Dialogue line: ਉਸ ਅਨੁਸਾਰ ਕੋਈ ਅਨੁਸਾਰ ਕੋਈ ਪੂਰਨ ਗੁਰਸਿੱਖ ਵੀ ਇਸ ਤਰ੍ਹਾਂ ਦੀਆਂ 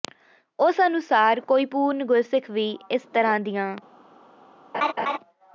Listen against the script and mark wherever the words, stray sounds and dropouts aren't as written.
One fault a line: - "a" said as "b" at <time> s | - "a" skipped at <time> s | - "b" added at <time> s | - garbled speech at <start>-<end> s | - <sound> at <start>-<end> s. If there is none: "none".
- "ਅਨੁਸਾਰ ਕੋਈ" skipped at 1.6 s
- laugh at 4.7-5.2 s